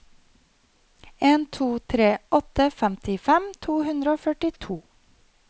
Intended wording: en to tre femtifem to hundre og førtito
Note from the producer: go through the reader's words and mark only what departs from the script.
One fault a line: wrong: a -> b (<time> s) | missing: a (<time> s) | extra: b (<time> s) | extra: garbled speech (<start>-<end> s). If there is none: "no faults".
extra: åtte (2.4 s)